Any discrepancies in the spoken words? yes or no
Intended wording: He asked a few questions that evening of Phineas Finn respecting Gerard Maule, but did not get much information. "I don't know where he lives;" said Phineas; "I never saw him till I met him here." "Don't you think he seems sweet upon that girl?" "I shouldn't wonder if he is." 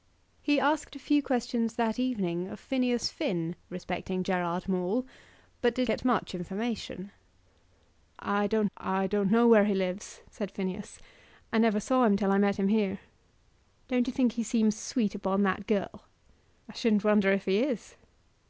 yes